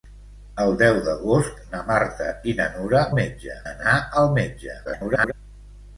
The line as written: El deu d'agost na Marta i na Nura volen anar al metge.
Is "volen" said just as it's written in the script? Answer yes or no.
no